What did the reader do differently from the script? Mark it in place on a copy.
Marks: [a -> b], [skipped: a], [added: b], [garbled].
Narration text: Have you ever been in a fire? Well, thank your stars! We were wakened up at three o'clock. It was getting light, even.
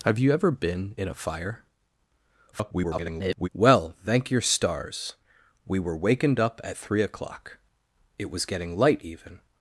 Have you ever been in a fire? [garbled] Well, thank your stars! We were wakened up at three o'clock. It was getting light, even.